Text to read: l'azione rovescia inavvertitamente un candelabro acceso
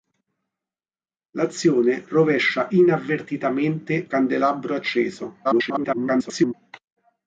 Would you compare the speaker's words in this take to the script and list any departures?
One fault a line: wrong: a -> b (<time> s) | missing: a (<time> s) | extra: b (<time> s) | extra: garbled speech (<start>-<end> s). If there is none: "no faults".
missing: un (4.1 s)
extra: garbled speech (5.4-6.5 s)